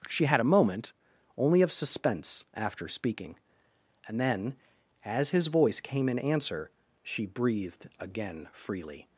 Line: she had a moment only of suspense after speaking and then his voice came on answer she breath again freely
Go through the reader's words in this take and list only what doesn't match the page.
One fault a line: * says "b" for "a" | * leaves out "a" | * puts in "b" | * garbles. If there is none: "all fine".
* puts in "as"
* says "in" for "on"
* says "breathed" for "breath"